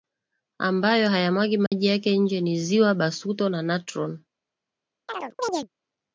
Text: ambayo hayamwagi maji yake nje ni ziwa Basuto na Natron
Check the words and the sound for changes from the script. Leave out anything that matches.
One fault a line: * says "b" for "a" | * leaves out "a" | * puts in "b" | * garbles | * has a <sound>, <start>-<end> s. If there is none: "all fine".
* has a dropout, 1.7-1.7 s
* has a chirp, 5.1-5.7 s